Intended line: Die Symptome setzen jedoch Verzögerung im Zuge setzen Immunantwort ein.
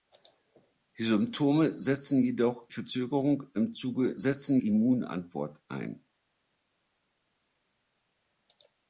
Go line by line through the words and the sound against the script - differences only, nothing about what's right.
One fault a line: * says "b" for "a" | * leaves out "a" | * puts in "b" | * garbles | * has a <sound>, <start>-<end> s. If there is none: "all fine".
all fine